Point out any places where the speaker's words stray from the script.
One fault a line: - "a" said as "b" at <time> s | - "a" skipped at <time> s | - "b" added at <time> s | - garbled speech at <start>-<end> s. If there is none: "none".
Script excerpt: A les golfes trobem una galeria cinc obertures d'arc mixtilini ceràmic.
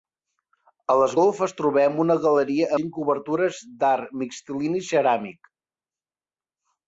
none